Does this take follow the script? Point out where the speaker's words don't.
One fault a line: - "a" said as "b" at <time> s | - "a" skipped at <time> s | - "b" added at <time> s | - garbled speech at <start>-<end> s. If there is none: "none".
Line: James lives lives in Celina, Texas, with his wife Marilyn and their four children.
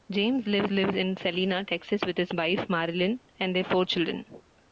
none